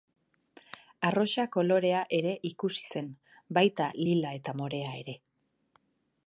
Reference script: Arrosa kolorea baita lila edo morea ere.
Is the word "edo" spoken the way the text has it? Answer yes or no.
no